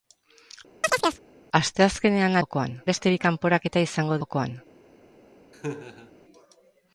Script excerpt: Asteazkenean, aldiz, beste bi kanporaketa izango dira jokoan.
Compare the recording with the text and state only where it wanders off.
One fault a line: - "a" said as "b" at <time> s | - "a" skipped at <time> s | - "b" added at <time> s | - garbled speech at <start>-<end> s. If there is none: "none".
- "aldiz" said as "jokoan" at 2.4 s
- "dira" skipped at 4.2 s